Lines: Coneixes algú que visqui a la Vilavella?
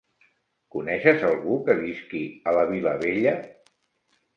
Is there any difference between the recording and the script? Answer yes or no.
no